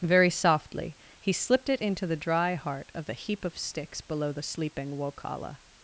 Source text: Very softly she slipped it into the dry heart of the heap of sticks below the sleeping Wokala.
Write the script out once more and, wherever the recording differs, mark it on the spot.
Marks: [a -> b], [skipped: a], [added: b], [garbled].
Very softly [she -> he] slipped it into the dry heart of the heap of sticks below the sleeping Wokala.